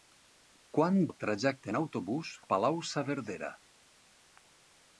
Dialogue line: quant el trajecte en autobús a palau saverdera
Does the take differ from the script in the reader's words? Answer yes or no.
no